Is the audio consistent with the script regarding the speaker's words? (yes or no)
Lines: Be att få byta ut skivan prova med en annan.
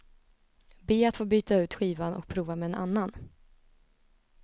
no